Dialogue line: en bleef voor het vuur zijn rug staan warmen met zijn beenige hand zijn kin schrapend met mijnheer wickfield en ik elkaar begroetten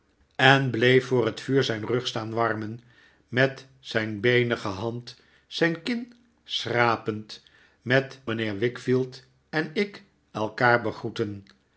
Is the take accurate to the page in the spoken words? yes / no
yes